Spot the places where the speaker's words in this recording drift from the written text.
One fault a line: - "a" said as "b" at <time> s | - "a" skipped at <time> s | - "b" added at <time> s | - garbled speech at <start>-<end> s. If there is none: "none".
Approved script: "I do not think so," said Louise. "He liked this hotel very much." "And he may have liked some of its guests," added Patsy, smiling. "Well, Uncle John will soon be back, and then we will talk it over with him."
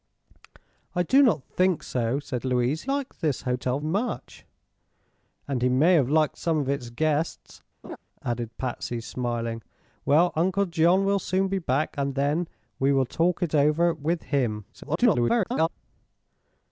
- "He" skipped at 2.9 s
- "very" skipped at 3.8 s
- garbled speech at 14.7-15.7 s